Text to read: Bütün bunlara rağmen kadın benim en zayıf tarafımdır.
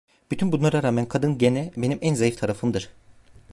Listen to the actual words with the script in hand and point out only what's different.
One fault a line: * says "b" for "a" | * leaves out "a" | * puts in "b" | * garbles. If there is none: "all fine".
* puts in "gene"